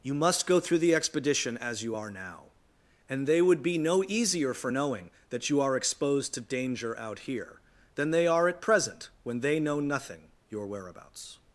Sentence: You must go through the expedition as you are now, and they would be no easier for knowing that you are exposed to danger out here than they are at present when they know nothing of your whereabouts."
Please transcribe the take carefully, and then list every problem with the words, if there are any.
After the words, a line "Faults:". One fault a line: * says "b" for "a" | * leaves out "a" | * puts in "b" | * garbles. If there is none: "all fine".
You must go through the expedition as you are now, and they would be no easier for knowing that you are exposed to danger out here than they are at present when they know nothing your whereabouts."
Faults:
* leaves out "of"